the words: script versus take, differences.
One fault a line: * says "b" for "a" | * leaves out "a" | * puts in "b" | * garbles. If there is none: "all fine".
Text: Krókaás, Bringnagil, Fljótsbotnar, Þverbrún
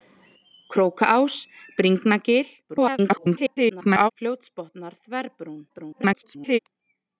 * garbles
* garbles